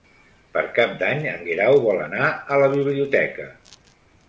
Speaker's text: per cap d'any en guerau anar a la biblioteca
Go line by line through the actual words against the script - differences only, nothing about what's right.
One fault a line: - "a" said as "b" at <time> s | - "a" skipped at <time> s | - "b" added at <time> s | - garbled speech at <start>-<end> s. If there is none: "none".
- "vol" added at 1.9 s